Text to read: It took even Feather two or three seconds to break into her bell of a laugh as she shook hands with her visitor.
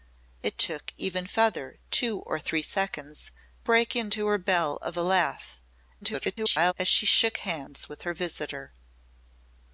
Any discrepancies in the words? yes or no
yes